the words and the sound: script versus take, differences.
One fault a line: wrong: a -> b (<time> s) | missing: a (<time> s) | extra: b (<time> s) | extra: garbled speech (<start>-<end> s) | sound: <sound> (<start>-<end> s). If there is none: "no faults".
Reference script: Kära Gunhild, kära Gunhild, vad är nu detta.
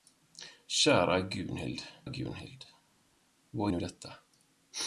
missing: kära (1.8 s)
missing: är (3.7 s)